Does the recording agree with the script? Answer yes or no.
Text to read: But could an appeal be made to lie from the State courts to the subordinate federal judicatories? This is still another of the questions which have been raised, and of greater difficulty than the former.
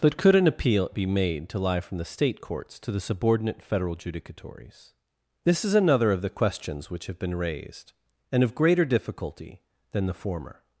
no